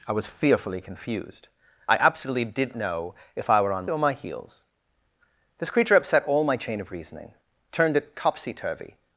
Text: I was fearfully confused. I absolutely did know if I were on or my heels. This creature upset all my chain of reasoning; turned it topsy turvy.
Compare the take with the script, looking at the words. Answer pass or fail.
pass